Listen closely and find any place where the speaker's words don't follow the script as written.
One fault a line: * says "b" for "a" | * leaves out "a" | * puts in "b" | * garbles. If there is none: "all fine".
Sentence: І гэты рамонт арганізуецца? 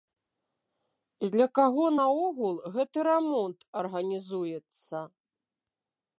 * puts in "для каго наогул"